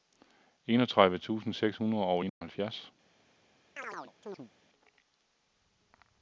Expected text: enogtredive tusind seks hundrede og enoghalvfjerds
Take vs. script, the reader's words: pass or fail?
pass